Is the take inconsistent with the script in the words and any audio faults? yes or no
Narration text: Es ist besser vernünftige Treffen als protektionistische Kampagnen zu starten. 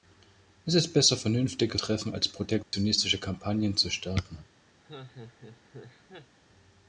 yes